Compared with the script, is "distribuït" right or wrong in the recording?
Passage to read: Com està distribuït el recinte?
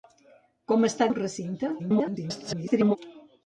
wrong